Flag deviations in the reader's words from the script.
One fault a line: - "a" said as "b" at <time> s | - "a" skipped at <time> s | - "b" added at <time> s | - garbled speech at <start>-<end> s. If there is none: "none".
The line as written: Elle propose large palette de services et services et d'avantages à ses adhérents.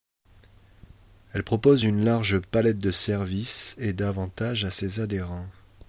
- "une" added at 1.8 s
- "services et" skipped at 3.9 s